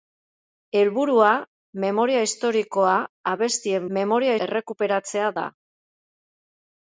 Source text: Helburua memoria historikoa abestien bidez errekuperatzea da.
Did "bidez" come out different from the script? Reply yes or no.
yes